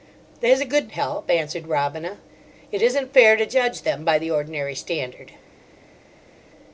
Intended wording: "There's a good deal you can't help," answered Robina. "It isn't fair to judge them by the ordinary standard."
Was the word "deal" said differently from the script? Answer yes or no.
yes